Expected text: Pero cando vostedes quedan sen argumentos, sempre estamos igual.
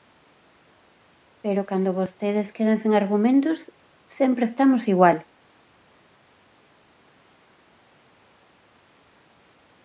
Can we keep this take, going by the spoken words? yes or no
yes